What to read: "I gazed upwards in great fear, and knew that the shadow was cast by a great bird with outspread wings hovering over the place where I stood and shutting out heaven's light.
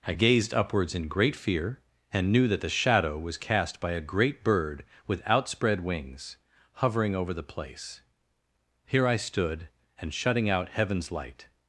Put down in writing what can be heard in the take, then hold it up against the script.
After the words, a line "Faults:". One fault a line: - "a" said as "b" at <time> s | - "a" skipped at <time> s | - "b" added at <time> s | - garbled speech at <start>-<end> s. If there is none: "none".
"I gazed upwards in great fear, and knew that the shadow was cast by a great bird with outspread wings hovering over the place here I stood and shutting out heaven's light.
Faults:
- "where" said as "here" at 8.9 s